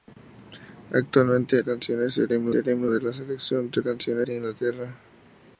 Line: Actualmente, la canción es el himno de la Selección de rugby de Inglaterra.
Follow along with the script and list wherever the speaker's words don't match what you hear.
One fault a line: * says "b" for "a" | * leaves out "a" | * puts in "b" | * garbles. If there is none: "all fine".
* leaves out "la"
* puts in "el himno"
* says "canción" for "rugby"